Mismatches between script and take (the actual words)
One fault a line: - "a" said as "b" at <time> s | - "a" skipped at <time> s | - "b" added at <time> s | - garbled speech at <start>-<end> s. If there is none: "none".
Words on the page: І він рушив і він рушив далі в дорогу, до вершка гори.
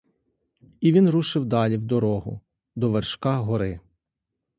- "і він рушив" skipped at 1.4 s